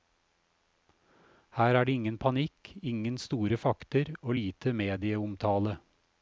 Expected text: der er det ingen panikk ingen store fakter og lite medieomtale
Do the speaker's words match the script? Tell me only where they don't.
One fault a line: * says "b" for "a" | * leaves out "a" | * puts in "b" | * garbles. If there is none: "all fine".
* says "her" for "der"